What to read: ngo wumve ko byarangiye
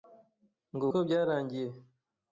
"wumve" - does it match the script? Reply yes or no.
no